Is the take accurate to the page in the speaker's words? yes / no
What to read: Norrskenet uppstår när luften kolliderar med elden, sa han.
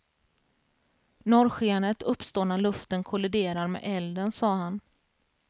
yes